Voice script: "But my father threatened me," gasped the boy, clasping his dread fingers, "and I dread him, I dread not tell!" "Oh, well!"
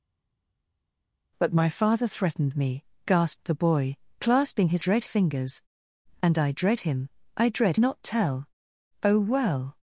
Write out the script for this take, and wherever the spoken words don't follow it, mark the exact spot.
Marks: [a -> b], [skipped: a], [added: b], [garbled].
"But my father threatened me," gasped the boy, clasping his dread fingers, "and I dread him, I dread not tell!" "Oh, well!"